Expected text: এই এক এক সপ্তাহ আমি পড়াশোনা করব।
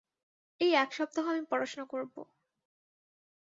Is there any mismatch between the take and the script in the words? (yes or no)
yes